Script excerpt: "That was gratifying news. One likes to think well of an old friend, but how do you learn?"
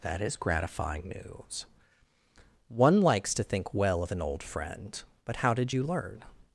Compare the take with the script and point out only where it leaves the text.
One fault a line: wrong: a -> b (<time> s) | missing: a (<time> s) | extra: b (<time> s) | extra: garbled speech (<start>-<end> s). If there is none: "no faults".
wrong: was -> is (0.2 s)
wrong: do -> did (5.5 s)